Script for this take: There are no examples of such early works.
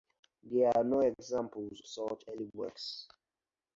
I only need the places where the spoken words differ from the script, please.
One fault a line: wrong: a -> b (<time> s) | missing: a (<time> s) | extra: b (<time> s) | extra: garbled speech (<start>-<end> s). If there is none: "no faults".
missing: of (1.8 s)